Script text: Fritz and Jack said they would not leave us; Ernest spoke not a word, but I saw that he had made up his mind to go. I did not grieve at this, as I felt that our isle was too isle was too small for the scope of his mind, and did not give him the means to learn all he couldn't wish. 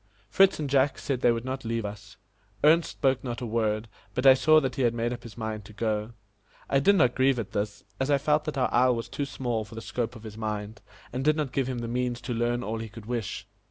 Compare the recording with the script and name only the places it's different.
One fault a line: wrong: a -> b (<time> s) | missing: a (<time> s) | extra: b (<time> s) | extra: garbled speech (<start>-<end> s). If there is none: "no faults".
missing: isle was too (9.2 s)
wrong: couldn't -> could (12.9 s)